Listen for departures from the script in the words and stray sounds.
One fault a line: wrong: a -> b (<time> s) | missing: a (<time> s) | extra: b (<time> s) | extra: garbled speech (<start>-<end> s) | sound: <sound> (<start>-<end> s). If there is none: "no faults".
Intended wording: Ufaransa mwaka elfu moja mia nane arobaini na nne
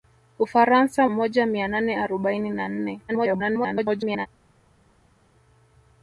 missing: mwaka elfu (1.1 s)
extra: garbled speech (3.1-4.3 s)